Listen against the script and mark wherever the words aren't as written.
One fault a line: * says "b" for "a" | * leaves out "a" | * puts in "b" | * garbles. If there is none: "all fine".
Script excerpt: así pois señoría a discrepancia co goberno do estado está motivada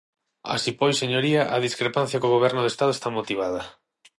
all fine